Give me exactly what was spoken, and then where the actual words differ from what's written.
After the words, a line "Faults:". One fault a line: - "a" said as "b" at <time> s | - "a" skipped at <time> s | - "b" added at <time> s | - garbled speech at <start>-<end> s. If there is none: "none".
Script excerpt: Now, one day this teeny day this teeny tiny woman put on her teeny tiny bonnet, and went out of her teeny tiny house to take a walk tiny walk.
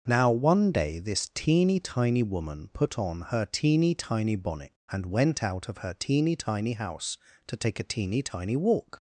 Now, one day this teeny tiny woman put on her teeny tiny bonnet, and went out of her teeny tiny house to take a teeny tiny walk.
Faults:
- "day this teeny" skipped at 1.8 s
- "walk" said as "teeny" at 7.8 s